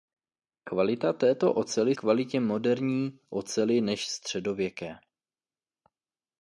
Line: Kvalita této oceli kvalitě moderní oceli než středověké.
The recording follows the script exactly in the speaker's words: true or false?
true